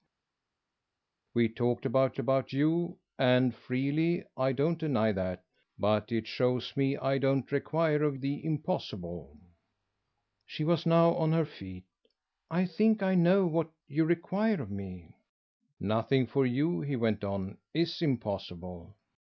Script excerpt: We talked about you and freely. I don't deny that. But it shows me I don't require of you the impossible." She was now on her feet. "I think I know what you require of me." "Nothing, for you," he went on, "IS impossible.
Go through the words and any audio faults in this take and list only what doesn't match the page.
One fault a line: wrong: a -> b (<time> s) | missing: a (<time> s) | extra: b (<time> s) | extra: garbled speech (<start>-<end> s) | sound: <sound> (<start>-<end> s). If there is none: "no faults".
extra: about (2.2 s)
missing: you (8.2 s)